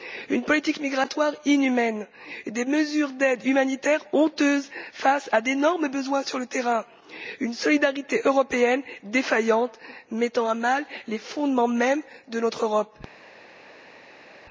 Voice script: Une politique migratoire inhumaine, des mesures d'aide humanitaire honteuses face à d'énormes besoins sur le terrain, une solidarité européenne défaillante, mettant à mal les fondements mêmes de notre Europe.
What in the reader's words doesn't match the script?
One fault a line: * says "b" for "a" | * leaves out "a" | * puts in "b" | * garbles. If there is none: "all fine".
all fine